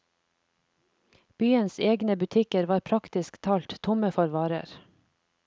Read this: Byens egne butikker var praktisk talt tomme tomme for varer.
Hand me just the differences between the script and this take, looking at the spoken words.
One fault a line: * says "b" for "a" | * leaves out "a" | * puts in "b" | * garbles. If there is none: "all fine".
* leaves out "tomme"